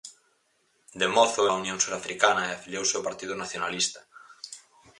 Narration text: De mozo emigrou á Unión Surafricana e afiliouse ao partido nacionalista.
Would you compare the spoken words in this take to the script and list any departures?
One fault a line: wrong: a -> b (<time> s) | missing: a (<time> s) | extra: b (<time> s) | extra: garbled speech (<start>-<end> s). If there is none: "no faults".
missing: emigrou (1.4 s)